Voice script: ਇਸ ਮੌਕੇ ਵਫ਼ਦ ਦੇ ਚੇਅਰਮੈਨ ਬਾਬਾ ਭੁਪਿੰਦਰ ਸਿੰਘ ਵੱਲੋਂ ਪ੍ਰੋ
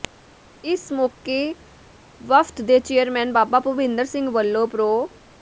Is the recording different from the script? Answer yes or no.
no